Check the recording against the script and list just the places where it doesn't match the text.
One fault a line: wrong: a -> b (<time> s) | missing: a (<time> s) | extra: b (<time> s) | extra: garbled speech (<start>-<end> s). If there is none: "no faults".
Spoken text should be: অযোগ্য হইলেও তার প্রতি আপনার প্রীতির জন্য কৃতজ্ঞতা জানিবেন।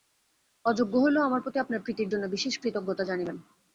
wrong: তার -> আমার (1.3 s)
extra: বিশেষ (2.3 s)